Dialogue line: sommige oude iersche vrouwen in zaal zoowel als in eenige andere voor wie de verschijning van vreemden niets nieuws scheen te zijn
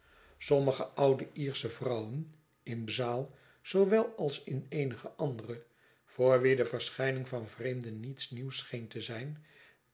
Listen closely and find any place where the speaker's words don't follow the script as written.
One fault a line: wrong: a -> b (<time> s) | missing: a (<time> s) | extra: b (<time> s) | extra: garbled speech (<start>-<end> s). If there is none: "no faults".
no faults